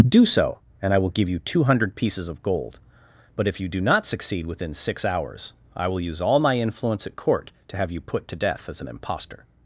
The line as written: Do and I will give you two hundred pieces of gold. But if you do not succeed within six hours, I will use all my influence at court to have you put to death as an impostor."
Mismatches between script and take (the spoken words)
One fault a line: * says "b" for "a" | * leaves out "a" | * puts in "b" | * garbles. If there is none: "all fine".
* puts in "so"